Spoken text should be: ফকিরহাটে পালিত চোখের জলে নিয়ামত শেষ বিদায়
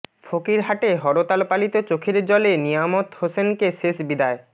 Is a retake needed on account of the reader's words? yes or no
yes